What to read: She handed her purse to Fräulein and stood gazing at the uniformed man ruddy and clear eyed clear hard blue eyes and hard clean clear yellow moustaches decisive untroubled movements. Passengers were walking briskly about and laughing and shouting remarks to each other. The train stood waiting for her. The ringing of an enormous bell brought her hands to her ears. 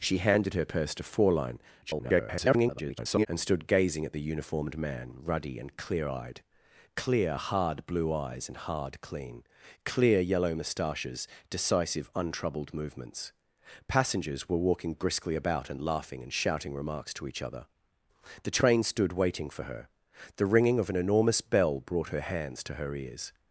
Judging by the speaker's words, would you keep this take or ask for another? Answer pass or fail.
fail